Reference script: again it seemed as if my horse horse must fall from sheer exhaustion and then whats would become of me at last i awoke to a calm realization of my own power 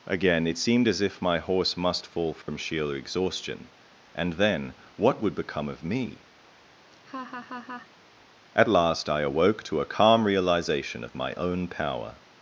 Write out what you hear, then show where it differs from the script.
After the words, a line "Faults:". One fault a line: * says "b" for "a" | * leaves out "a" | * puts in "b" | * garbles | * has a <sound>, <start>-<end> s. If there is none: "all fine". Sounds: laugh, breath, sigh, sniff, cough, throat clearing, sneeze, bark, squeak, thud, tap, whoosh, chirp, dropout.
again it seemed as if my horse must fall from sheer exhaustion and then what would become of me at last i awoke to a calm realization of my own power
Faults:
* leaves out "horse"
* has a dropout, 2.4-2.5 s
* says "what" for "whats"
* has a laugh, 6.9-7.9 s